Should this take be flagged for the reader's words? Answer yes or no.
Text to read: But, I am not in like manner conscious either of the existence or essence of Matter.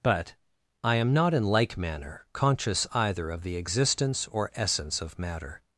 no